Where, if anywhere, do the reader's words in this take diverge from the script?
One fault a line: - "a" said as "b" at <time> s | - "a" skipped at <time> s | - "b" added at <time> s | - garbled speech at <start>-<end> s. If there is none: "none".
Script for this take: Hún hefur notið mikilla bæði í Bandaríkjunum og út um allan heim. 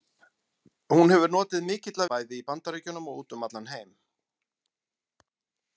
none